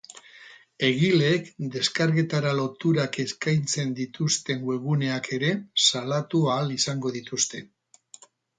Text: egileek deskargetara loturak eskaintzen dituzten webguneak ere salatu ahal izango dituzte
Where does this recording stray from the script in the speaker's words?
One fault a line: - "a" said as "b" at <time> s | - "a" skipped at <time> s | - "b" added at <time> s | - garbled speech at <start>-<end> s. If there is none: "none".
none